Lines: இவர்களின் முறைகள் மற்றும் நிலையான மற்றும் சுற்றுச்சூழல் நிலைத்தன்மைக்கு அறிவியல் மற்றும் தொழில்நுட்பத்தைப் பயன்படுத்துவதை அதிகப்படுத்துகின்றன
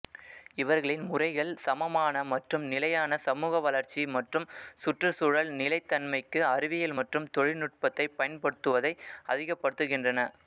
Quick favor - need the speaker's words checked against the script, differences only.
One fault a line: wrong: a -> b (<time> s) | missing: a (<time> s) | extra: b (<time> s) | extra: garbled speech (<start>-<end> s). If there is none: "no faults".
extra: சமமான (1.6 s)
extra: சமூக வளர்ச்சி (3.2 s)